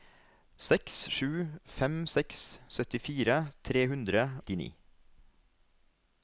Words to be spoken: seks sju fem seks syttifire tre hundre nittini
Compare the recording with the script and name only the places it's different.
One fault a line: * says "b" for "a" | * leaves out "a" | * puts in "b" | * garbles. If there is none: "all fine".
all fine